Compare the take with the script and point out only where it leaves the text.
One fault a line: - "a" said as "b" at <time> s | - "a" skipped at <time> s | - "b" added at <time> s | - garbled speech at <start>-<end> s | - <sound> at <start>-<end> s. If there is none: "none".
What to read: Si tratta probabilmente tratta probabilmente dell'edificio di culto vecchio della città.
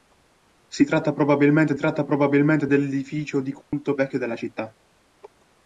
- dropout at 3.6-3.7 s